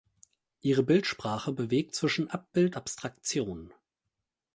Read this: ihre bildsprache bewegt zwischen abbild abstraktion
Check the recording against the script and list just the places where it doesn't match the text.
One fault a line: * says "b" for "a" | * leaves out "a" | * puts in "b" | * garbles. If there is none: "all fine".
all fine